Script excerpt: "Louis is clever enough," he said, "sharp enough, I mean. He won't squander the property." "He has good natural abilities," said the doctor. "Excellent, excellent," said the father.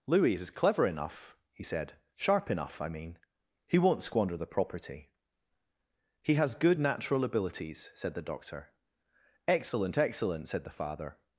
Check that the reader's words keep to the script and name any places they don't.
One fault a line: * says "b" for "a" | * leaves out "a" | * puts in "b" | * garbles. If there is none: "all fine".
all fine